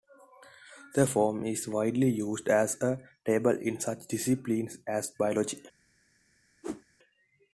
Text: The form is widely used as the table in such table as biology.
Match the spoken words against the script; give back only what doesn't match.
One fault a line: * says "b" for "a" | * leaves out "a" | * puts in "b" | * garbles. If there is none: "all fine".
* says "a" for "the"
* says "disciplines" for "table"